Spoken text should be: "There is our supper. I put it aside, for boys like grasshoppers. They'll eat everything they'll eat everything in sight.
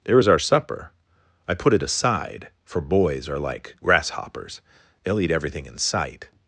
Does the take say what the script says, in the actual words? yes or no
no